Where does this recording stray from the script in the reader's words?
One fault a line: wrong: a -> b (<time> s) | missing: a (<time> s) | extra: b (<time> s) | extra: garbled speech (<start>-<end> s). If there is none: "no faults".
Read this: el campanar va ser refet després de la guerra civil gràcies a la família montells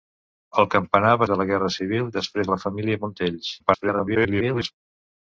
missing: ser refet després (1.3 s)
wrong: gràcies -> després (2.1 s)
extra: garbled speech (3.6-4.7 s)